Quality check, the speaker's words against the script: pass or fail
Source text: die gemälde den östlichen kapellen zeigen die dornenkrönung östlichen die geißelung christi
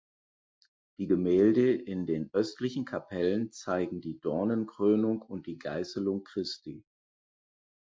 fail